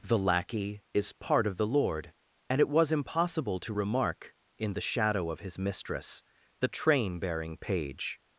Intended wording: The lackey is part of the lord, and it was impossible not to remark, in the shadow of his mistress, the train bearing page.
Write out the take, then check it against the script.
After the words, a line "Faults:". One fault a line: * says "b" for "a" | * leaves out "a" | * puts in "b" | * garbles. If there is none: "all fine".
The lackey is part of the lord, and it was impossible to remark, in the shadow of his mistress, the train bearing page.
Faults:
* leaves out "not"